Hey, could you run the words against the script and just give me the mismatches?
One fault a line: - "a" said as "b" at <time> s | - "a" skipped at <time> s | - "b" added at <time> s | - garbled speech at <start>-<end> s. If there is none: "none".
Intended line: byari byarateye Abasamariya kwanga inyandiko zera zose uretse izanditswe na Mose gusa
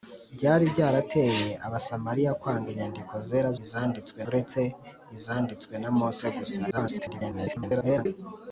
- "zose" said as "izanditswe" at 3.6 s
- garbled speech at 6.7-8.1 s